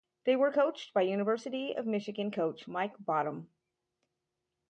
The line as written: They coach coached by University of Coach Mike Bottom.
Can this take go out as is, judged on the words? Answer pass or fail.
fail